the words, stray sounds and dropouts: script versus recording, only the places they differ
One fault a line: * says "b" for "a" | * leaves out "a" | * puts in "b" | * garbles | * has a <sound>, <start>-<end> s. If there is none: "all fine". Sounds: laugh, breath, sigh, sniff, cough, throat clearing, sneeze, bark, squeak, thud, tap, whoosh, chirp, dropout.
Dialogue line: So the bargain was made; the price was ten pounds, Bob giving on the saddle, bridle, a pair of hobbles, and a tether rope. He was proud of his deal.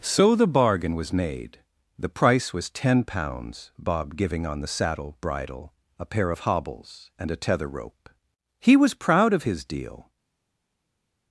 all fine